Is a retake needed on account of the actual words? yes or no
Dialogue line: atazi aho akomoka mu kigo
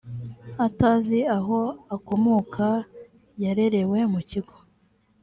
yes